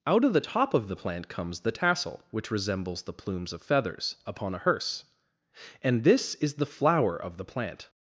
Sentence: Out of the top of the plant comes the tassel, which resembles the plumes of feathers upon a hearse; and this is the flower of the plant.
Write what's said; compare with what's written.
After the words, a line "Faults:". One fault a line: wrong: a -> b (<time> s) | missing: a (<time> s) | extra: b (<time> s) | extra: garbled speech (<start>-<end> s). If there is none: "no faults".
Out of the top of the plant comes the tassel, which resembles the plumes of feathers upon a hearse; and this is the flower of the plant.
Faults:
no faults